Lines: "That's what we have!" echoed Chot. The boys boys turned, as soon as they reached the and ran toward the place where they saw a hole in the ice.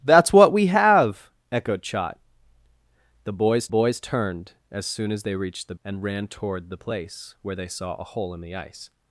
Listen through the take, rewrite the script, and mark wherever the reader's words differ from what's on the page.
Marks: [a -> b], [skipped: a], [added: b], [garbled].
"That's what we have!" echoed Chot. The boys boys turned, as soon as they reached the and ran toward the place where they saw a hole in the ice.